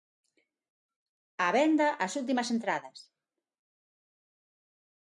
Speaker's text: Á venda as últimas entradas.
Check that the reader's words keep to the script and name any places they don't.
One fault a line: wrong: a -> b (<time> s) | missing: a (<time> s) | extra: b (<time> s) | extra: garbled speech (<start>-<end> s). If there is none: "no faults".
no faults